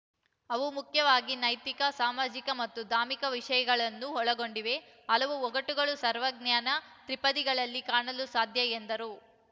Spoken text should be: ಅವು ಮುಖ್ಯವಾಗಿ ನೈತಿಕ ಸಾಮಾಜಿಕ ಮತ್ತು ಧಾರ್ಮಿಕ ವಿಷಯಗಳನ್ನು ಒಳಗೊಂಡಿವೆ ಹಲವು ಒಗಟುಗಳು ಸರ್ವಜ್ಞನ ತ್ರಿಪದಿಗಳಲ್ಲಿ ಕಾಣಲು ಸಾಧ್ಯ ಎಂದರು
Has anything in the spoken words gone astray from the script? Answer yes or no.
no